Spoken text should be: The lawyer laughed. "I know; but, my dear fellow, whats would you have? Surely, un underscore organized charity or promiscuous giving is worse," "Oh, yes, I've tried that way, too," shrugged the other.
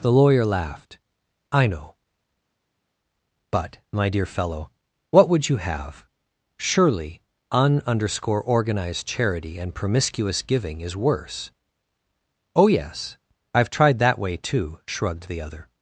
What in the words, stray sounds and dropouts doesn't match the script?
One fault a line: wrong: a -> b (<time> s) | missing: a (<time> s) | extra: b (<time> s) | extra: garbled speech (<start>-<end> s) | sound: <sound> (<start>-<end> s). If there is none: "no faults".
wrong: whats -> what (5.1 s)
wrong: or -> and (9.6 s)